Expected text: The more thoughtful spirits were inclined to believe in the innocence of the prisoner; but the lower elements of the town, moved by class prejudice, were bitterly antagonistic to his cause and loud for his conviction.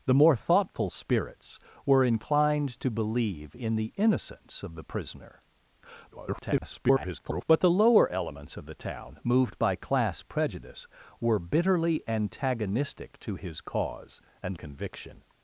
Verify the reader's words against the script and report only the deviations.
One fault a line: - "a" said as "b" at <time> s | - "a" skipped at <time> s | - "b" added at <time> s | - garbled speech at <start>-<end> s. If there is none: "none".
- garbled speech at 6.1-7.5 s
- "loud for his" skipped at 14.6 s